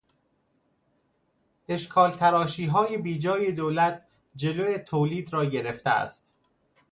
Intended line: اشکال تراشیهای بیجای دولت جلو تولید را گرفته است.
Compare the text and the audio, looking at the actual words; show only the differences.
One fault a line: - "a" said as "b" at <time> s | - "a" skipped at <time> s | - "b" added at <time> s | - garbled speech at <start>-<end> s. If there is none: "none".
none